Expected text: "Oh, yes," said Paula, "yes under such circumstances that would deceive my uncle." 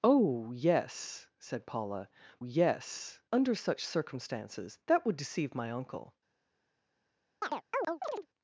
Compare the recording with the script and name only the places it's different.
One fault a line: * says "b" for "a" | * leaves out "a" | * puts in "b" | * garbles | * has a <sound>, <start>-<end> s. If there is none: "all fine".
* has a chirp, 7.4-8.3 s